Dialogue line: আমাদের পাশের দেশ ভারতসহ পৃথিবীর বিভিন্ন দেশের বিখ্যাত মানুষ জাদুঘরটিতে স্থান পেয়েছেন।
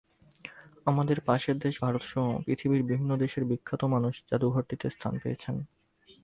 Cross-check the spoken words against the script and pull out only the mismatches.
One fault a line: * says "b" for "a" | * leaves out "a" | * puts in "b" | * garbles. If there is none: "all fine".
all fine